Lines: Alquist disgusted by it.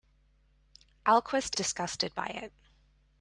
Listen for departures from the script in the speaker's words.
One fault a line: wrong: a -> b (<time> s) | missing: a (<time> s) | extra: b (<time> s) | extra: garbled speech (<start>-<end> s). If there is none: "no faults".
no faults